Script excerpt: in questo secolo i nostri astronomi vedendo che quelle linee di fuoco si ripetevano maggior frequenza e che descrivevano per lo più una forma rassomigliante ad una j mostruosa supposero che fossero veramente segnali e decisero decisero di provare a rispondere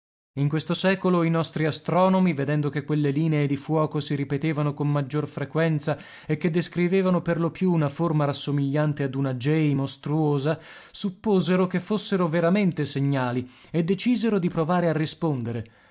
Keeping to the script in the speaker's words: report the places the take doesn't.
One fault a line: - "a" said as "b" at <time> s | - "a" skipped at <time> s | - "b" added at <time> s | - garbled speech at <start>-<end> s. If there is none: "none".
- "con" added at 4.7 s
- "decisero" skipped at 14.4 s